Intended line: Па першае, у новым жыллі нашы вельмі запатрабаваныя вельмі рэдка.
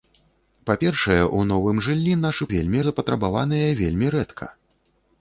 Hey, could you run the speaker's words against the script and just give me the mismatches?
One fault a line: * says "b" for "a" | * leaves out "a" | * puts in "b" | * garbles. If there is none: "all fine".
all fine